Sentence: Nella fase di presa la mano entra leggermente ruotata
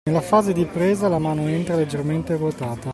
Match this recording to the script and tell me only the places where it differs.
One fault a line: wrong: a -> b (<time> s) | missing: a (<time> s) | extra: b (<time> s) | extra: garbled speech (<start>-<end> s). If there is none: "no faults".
no faults